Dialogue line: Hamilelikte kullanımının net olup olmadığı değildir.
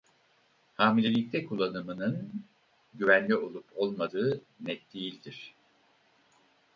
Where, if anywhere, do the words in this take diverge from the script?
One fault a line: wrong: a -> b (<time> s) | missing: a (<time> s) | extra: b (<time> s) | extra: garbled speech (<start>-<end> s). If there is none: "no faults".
wrong: net -> güvenli (2.9 s)
extra: net (4.6 s)